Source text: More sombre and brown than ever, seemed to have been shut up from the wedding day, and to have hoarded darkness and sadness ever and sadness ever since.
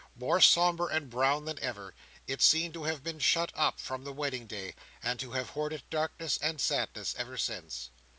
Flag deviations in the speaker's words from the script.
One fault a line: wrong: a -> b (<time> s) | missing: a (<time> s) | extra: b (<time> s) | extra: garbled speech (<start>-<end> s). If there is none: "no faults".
extra: it (2.2 s)
missing: and sadness ever (7.4 s)